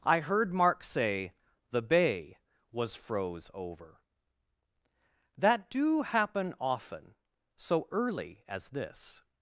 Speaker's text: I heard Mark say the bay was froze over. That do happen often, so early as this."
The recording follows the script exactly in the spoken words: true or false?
true